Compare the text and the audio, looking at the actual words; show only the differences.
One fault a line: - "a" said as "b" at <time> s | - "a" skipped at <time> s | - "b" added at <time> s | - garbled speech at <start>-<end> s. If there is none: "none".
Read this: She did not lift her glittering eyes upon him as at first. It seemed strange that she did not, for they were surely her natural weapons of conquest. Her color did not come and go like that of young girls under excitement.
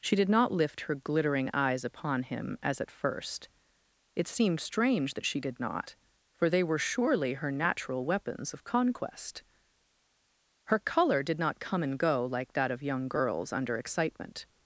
none